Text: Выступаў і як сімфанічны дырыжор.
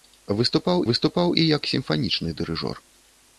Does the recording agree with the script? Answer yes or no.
no